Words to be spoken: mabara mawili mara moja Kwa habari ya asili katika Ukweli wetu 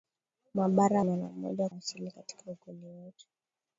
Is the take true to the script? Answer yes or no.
no